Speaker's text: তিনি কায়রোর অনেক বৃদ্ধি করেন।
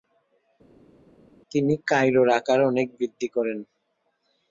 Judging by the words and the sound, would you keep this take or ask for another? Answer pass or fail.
fail